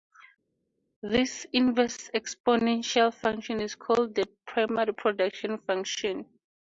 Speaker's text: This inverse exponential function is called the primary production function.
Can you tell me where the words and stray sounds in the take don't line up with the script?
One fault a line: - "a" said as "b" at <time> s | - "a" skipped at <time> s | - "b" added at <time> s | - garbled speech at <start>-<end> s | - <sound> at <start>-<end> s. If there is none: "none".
none